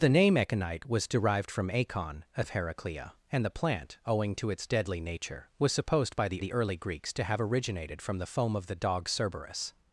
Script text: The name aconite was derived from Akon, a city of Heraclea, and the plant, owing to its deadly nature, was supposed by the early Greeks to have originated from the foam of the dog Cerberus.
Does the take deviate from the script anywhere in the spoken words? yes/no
yes